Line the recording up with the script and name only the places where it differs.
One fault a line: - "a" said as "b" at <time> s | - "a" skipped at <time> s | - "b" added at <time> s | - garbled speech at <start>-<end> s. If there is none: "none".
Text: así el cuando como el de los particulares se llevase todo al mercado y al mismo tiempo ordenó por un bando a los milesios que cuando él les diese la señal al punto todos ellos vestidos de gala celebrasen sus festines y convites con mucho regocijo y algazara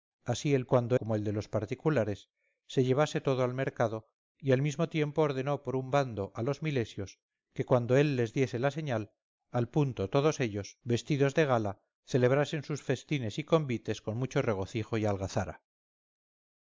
none